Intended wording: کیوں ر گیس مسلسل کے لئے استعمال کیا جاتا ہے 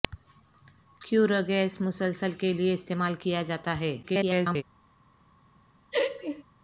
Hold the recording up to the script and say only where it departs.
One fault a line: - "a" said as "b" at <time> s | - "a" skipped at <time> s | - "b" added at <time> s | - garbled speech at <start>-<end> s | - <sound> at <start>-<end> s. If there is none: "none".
- garbled speech at 4.0-4.6 s
- laugh at 5.9-6.4 s